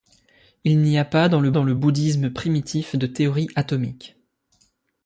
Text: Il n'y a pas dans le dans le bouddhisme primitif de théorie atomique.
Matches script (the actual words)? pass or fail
pass